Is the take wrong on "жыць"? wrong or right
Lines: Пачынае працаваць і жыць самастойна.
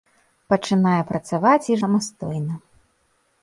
wrong